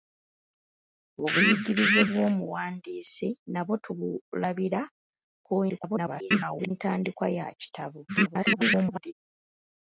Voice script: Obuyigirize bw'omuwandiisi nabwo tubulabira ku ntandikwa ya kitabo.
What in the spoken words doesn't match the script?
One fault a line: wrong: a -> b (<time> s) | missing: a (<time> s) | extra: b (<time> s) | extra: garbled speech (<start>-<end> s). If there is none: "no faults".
extra: garbled speech (5.7-6.7 s)
extra: garbled speech (8.1-9.1 s)